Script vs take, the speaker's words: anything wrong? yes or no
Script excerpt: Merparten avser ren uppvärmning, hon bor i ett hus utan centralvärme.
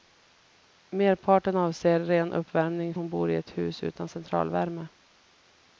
no